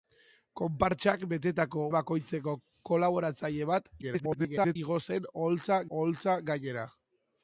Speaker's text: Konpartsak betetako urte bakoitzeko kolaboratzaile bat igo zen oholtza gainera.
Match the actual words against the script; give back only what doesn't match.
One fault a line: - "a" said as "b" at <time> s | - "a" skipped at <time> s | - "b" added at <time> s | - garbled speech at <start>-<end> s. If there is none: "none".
- "urte" skipped at 1.9 s
- garbled speech at 4.0-4.8 s
- "oholtza" added at 5.9 s